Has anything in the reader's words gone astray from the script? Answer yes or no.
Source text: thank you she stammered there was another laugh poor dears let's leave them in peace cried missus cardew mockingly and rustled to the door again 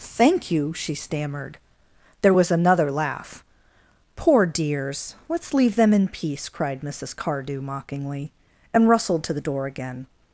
no